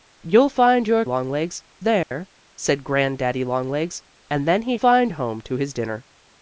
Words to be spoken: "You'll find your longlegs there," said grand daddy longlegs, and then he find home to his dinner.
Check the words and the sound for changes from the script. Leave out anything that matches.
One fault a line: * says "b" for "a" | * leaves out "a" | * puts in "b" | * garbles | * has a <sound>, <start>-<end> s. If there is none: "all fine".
* has a dropout, 2.0-2.1 s